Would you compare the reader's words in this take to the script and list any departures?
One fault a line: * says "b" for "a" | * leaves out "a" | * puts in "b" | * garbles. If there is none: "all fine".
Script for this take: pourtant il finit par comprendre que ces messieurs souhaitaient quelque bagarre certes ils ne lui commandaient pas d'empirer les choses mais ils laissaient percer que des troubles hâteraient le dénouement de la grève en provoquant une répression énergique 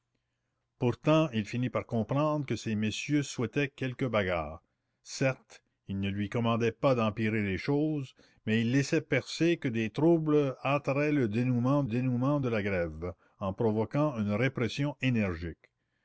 * puts in "dénouement"